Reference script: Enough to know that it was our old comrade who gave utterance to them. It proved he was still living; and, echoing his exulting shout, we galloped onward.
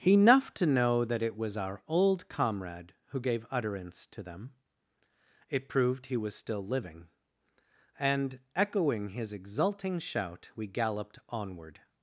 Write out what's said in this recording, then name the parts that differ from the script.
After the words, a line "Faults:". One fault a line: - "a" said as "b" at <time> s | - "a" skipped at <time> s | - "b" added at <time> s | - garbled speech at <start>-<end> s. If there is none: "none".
Enough to know that it was our old comrade who gave utterance to them. It proved he was still living; and, echoing his exulting shout, we galloped onward.
Faults:
none